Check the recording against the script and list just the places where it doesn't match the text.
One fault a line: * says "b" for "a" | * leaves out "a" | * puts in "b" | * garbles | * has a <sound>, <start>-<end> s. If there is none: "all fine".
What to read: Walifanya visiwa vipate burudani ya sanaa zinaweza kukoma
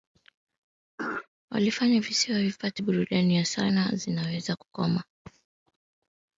* has a throat clearing, 1.0-1.3 s